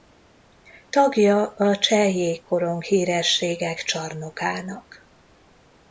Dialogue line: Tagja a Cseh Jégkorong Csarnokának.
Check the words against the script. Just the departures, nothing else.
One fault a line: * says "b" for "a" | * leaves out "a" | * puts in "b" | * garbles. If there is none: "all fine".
* puts in "Hírességek"